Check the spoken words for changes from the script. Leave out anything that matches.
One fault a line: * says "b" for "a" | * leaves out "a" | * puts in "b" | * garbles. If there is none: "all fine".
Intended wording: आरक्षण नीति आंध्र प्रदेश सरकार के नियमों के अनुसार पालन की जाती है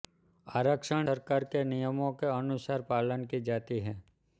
* leaves out "नीति आंध्र प्रदेश"